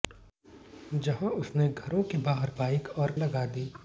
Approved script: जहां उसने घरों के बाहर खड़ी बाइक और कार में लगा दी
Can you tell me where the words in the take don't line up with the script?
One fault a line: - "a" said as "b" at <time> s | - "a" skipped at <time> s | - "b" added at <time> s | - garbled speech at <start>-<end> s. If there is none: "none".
- "खड़ी" skipped at 2.5 s
- "कार में" skipped at 3.1 s